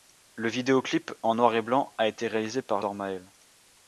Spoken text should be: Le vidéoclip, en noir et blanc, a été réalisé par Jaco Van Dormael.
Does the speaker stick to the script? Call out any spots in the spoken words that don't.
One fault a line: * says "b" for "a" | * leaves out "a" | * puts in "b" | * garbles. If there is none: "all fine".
* leaves out "Jaco Van"